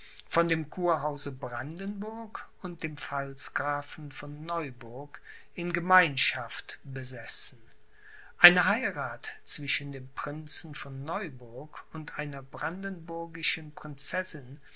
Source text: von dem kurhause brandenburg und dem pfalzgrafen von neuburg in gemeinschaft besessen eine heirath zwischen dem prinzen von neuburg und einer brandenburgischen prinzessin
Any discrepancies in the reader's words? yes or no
no